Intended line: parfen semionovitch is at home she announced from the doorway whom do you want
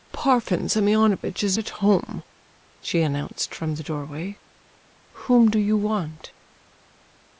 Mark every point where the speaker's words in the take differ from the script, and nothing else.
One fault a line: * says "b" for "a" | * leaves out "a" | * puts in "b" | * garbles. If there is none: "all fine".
all fine